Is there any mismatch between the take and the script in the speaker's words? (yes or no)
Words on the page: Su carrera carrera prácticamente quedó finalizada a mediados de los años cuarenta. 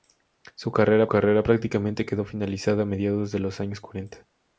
no